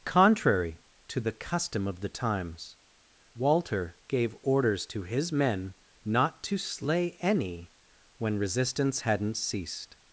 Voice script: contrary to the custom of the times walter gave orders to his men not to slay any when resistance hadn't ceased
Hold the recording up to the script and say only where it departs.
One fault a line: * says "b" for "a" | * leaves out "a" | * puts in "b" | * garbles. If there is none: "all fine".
all fine